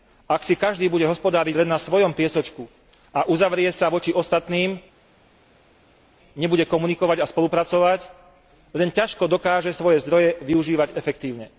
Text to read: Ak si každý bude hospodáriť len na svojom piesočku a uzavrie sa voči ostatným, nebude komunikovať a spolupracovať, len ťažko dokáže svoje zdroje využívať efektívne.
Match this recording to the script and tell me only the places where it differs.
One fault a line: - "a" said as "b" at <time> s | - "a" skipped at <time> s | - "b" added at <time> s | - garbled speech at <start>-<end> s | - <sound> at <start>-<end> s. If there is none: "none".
none